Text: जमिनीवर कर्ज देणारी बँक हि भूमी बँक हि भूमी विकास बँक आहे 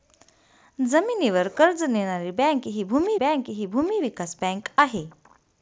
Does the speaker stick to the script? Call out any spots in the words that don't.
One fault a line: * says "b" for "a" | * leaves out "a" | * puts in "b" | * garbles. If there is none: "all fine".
all fine